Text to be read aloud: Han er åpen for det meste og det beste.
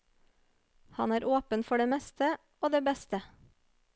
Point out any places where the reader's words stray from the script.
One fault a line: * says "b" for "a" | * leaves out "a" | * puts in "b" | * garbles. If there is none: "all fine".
all fine